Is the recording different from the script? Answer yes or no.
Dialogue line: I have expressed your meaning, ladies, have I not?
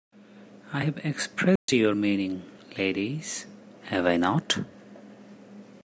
no